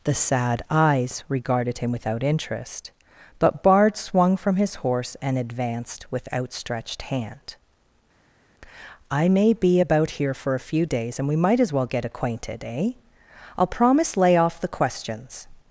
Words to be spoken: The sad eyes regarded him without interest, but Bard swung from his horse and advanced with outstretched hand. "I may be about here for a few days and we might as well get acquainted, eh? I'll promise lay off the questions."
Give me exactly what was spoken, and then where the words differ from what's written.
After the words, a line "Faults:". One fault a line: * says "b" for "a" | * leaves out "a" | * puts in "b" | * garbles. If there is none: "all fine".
The sad eyes regarded him without interest, but Bard swung from his horse and advanced with outstretched hand. "I may be about here for a few days and we might as well get acquainted, eh? I'll promise lay off the questions."
Faults:
all fine